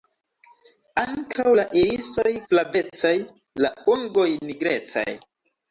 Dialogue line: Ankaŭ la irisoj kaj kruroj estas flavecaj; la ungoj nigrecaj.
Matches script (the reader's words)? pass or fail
fail